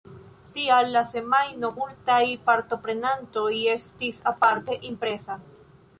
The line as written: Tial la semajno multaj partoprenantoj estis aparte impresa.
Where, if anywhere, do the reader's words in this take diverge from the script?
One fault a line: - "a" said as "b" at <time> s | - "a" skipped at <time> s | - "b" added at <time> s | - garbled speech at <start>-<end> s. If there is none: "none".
none